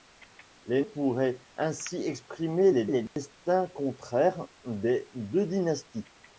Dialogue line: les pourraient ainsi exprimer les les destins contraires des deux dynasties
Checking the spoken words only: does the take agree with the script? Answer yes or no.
yes